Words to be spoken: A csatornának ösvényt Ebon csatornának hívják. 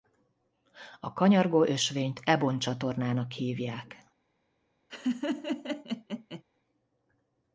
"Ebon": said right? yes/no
yes